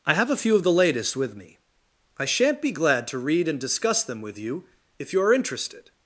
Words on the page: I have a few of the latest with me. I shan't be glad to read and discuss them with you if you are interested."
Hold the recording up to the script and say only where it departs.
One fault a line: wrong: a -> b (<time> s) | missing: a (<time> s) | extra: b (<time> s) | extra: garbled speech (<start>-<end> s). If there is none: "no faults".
no faults